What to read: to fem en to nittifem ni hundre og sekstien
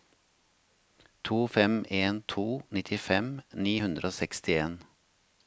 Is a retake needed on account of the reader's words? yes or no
no